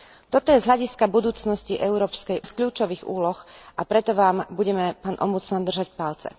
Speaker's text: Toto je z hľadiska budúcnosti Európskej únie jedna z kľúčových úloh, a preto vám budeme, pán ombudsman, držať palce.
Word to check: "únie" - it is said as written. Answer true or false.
false